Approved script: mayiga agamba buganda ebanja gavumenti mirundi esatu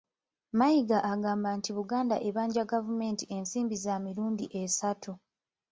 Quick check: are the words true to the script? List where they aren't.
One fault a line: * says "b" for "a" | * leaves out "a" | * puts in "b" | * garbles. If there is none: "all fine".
* puts in "nti"
* puts in "ensimbi za"